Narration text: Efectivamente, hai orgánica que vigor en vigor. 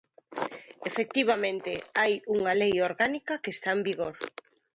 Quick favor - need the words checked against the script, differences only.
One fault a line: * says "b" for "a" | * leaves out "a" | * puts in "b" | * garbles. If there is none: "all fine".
* puts in "unha lei"
* says "está" for "vigor"